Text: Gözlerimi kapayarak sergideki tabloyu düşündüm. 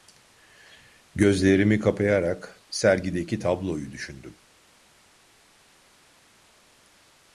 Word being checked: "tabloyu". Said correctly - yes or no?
yes